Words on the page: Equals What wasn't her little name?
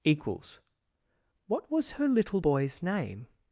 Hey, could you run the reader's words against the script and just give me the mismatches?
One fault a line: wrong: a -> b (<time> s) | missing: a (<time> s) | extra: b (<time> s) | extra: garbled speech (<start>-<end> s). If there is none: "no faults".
wrong: wasn't -> was (1.7 s)
extra: boy's (2.3 s)